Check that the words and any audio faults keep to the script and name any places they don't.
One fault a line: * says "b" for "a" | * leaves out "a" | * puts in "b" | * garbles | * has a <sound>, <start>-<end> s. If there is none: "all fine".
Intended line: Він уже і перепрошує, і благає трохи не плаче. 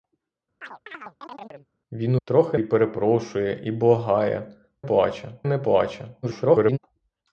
* has a chirp, 0.6-1.7 s
* says "трохи" for "уже"
* says "плаче" for "трохи"
* garbles